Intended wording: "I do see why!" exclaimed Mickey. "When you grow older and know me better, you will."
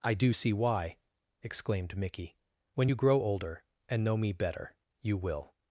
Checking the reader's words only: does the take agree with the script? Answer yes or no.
yes